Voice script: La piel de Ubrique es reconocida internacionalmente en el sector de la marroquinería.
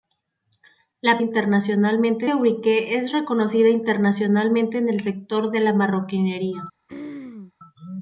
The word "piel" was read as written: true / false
false